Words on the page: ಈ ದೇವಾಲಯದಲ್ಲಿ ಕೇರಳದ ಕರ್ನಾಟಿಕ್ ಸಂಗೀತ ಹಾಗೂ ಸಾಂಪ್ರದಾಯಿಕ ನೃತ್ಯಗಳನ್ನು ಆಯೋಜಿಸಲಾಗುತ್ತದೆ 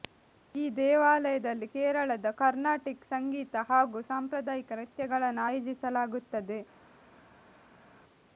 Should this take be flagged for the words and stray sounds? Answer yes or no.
no